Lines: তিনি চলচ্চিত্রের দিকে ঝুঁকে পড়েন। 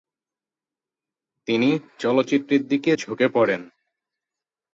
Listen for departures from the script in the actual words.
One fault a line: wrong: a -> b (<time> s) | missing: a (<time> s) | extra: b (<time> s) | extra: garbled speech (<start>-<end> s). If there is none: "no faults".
no faults